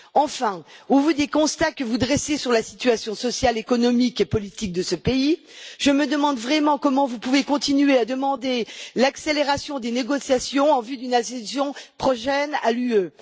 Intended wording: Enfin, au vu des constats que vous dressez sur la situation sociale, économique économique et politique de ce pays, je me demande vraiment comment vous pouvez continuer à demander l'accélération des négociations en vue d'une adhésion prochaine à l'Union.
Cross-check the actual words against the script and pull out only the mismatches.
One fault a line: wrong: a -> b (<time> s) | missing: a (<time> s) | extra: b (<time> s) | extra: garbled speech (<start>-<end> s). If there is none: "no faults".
missing: économique (4.2 s)